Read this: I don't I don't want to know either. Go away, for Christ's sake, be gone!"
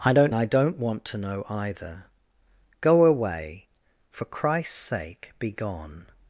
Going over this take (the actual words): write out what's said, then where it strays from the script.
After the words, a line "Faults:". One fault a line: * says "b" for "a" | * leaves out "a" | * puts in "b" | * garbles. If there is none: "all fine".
I don't I don't want to know either. Go away, for Christ's sake, be gone!"
Faults:
all fine